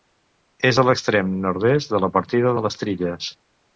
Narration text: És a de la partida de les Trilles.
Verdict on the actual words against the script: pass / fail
fail